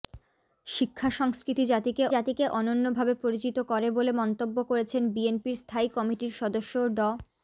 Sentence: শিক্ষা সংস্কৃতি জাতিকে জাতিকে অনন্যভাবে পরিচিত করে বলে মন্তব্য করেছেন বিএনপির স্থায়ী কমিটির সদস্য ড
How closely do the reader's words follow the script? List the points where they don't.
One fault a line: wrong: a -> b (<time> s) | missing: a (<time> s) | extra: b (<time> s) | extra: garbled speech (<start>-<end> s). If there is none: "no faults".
no faults